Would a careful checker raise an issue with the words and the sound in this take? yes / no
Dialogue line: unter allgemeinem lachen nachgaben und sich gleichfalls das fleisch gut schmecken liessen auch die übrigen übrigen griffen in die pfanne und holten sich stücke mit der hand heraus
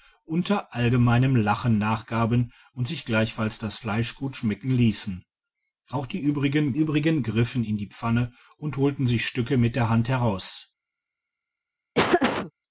yes